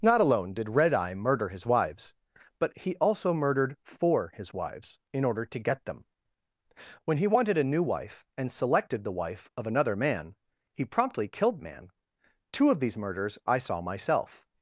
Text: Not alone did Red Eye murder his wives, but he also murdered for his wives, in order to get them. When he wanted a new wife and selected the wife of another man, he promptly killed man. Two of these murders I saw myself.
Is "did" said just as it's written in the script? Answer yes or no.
yes